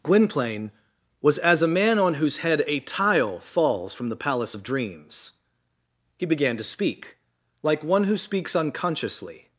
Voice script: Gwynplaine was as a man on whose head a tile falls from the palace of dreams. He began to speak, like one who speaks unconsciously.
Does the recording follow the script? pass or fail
pass